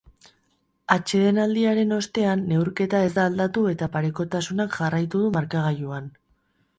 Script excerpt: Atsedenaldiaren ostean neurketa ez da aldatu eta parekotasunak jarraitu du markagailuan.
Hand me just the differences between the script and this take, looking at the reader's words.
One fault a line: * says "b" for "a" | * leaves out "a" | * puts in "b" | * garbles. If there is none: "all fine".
all fine